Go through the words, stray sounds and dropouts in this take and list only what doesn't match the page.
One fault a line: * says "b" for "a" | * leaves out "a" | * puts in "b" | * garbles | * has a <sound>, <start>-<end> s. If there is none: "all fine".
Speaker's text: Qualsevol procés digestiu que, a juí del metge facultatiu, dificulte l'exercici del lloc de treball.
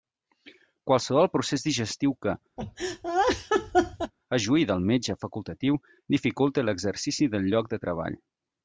* has a laugh, 2.6-4.1 s